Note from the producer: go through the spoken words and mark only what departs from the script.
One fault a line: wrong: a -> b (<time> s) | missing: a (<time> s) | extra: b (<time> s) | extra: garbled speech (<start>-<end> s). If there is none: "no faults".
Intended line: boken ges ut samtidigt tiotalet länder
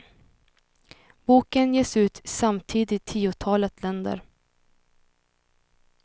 no faults